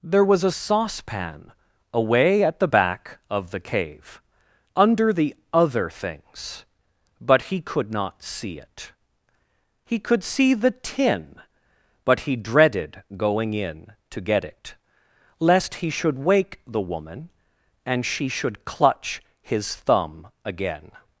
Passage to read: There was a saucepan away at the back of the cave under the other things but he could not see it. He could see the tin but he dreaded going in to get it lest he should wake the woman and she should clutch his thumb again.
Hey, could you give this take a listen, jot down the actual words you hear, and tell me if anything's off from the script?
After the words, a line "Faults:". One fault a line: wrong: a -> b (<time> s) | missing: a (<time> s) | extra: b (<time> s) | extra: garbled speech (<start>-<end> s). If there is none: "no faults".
There was a saucepan away at the back of the cave under the other things but he could not see it. He could see the tin but he dreaded going in to get it lest he should wake the woman and she should clutch his thumb again.
Faults:
no faults